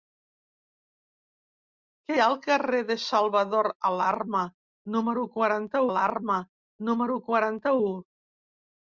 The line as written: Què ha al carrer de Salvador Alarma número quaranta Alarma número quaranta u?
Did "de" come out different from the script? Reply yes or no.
no